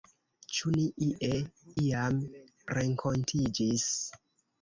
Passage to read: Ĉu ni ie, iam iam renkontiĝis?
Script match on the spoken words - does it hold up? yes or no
no